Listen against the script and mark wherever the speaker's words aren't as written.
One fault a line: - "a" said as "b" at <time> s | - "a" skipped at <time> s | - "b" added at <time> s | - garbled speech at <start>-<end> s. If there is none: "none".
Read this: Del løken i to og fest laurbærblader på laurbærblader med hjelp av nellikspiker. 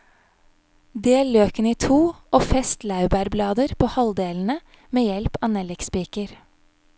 - "laurbærblader" said as "halvdelene" at 4.0 s